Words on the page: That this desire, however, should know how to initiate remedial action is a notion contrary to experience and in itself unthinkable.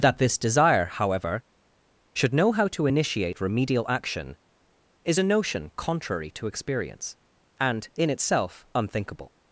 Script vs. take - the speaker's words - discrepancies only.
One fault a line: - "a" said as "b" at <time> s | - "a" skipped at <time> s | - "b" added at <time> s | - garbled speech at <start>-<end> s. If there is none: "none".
none